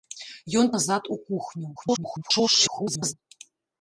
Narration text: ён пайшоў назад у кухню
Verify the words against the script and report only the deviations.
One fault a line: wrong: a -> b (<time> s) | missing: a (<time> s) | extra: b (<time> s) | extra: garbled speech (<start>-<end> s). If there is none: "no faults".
missing: пайшоў (0.7 s)
extra: garbled speech (1.8-3.1 s)